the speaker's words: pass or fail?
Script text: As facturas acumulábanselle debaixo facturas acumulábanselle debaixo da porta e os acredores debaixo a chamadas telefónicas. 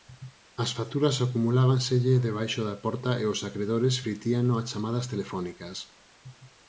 fail